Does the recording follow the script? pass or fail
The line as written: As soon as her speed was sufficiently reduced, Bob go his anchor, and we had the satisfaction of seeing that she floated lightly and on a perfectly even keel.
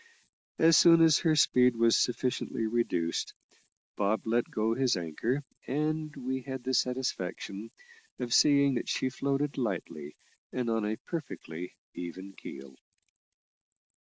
fail